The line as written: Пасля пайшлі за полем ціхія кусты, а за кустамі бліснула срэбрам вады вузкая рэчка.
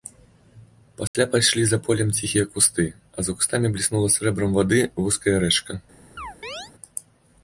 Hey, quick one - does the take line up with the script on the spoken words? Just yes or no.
yes